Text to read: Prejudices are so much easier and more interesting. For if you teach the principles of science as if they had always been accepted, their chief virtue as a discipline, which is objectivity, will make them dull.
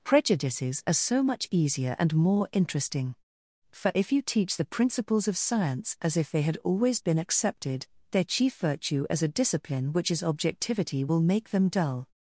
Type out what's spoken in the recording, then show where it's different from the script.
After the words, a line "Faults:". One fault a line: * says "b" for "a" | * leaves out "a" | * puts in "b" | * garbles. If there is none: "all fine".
Prejudices are so much easier and more interesting. For if you teach the principles of science as if they had always been accepted, their chief virtue as a discipline, which is objectivity, will make them dull.
Faults:
all fine